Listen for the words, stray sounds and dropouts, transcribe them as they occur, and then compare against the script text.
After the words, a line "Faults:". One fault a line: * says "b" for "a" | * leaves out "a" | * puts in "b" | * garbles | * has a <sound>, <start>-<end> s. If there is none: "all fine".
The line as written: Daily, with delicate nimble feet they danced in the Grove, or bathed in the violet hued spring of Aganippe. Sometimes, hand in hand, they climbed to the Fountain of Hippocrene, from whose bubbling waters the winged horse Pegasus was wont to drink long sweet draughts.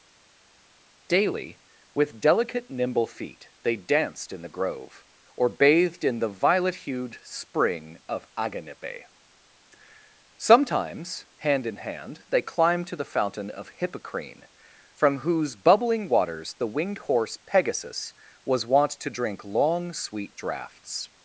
Daily, with delicate nimble feet they danced in the Grove, or bathed in the violet hued spring of Aganippe. Sometimes, hand in hand, they climbed to the Fountain of Hippocrene, from whose bubbling waters the winged horse Pegasus was wont to drink long sweet draughts.
Faults:
all fine